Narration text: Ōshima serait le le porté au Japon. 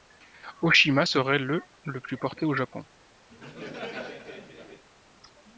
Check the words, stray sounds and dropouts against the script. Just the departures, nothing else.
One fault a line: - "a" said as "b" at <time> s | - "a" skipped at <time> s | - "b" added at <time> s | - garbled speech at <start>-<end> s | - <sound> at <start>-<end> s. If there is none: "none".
- "plus" added at 2.0 s
- laugh at 3.3-4.8 s